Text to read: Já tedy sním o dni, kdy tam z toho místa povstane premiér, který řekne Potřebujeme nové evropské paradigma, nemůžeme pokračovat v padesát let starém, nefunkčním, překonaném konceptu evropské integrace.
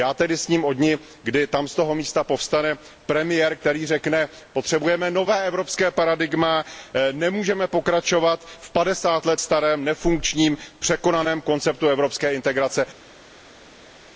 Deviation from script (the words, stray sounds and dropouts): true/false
false